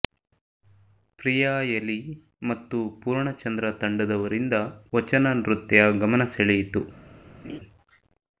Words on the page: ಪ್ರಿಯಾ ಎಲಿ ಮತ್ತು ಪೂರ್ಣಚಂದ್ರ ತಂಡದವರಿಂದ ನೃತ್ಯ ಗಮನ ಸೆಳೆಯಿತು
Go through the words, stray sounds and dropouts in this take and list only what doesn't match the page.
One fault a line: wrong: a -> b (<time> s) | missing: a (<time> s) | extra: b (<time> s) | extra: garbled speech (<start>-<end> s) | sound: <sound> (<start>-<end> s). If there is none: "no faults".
extra: ವಚನ (5.0 s)
sound: laugh (7.4-7.6 s)